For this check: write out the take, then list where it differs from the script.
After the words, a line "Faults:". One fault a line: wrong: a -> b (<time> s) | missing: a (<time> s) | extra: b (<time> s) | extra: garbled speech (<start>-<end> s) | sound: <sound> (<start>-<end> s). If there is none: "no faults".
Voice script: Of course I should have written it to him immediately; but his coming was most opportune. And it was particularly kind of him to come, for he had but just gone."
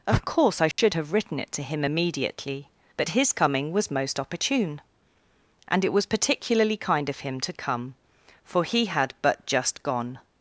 Of course I should have written it to him immediately; but his coming was most opportune. And it was particularly kind of him to come, for he had but just gone."
Faults:
sound: dropout (0.7-0.8 s)